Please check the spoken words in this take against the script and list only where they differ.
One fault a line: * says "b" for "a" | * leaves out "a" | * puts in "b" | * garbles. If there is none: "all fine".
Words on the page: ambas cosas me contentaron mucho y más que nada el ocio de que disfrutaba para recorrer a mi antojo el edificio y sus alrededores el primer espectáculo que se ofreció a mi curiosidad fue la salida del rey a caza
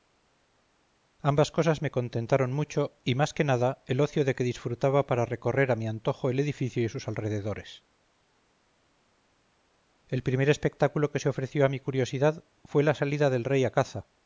all fine